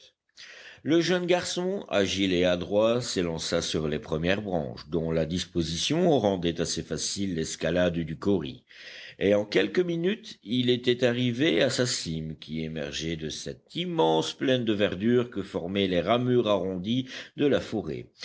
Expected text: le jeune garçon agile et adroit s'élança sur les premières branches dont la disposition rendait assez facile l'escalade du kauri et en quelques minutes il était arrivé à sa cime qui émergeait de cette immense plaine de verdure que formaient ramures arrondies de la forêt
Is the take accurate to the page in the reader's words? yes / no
no